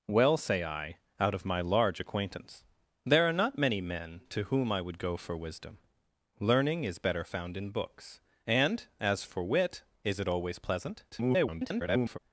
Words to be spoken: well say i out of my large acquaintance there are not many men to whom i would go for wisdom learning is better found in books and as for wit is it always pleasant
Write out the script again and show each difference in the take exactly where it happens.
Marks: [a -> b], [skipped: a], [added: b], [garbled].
well say i out of my large acquaintance there are not many men to whom i would go for wisdom learning is better found in books and as for wit is it always pleasant [garbled]